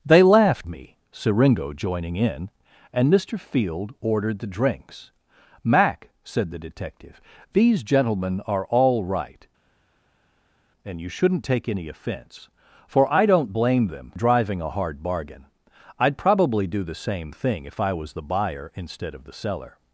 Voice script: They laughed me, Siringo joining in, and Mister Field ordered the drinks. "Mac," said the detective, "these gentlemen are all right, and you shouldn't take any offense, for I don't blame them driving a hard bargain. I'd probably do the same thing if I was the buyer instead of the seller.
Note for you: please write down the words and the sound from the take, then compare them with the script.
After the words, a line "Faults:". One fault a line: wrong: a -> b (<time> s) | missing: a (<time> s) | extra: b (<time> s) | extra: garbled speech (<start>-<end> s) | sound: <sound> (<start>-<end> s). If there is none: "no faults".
They laughed me, Siringo joining in, and Mister Field ordered the drinks. "Mac," said the detective, "these gentlemen are all right, and you shouldn't take any offense, for I don't blame them driving a hard bargain. I'd probably do the same thing if I was the buyer instead of the seller.
Faults:
no faults